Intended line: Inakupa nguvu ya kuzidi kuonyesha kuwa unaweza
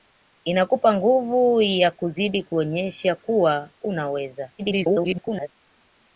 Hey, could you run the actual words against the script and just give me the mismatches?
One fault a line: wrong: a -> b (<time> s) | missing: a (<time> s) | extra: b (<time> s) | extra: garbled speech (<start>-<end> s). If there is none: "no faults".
extra: garbled speech (4.6-5.5 s)